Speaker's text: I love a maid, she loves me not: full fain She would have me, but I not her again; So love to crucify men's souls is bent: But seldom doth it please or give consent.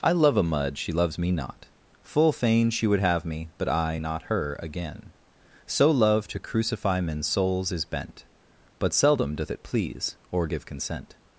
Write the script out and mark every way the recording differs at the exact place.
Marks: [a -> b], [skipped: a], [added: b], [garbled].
I love a [maid, -> mud] she loves me not: full fain She would have me, but I not her again; So love to crucify men's souls is bent: But seldom doth it please or give consent.